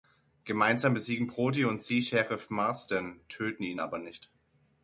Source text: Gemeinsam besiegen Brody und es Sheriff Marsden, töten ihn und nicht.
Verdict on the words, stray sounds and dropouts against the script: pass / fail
fail